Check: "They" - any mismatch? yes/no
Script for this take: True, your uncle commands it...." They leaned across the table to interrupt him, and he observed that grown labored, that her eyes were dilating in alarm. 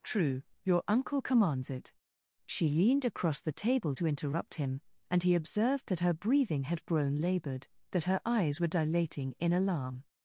yes